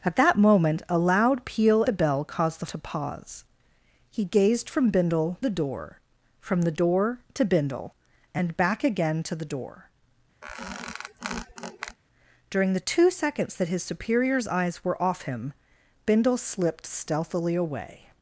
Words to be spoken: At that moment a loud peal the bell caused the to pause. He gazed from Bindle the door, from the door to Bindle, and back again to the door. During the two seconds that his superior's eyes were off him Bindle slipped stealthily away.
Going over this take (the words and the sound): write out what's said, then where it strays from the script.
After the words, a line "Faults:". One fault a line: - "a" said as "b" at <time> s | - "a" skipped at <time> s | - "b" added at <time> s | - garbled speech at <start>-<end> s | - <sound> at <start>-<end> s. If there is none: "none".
At that moment a loud peal the bell caused the to pause. He gazed from Bindle the door, from the door to Bindle, and back again to the door. During the two seconds that his superior's eyes were off him Bindle slipped stealthily away.
Faults:
- squeak at 10.4-12.0 s